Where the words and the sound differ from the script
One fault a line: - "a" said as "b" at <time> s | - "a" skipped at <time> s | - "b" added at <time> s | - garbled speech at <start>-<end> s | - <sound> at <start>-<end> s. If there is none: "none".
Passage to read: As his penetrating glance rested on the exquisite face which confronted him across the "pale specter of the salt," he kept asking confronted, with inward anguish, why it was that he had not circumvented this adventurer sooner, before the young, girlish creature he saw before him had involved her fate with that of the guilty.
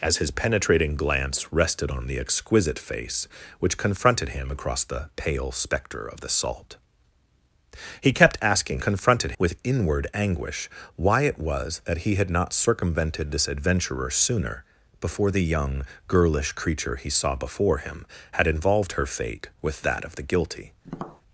- tap at 20.8-21.2 s